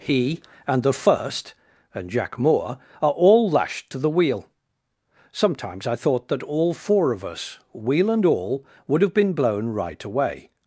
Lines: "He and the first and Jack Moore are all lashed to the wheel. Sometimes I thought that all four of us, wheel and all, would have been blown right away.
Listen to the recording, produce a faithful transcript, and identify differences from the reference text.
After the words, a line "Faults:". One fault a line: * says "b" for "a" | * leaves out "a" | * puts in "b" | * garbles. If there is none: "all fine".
"He and the first and Jack Moore are all lashed to the wheel. Sometimes I thought that all four of us, wheel and all, would have been blown right away.
Faults:
all fine